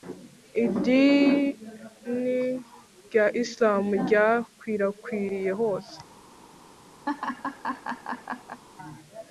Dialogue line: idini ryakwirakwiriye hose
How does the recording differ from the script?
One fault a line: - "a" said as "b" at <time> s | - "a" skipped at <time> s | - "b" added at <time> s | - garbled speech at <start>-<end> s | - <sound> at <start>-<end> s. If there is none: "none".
- "rya isilamu" added at 3.1 s
- laugh at 7.1-8.6 s